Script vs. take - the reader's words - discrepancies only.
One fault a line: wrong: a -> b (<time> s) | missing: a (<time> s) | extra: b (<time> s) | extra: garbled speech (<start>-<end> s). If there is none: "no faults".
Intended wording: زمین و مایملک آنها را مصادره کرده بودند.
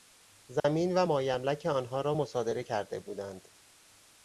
no faults